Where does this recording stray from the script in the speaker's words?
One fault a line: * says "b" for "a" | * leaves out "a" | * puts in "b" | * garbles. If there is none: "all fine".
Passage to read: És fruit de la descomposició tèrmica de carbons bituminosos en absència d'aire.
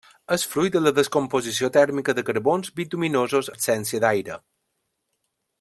* leaves out "en"